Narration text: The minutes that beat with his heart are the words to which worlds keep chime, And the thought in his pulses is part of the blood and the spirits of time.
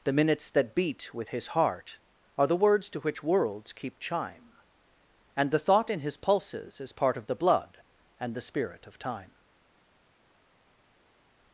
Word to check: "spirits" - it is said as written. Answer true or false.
false